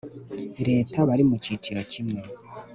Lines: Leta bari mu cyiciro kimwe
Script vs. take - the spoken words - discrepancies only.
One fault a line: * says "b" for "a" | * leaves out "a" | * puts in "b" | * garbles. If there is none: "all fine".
all fine